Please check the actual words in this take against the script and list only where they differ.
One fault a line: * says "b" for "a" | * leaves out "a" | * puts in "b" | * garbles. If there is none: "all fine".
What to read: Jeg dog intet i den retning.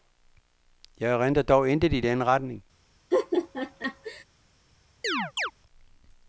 * puts in "erindrer"